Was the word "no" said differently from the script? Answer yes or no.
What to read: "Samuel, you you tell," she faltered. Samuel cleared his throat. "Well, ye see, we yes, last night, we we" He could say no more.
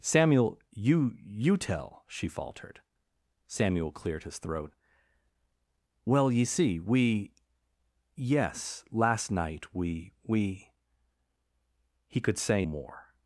yes